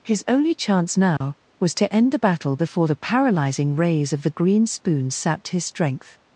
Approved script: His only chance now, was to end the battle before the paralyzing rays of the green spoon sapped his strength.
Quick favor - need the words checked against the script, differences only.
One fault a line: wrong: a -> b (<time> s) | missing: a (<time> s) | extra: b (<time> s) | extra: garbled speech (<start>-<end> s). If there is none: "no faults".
no faults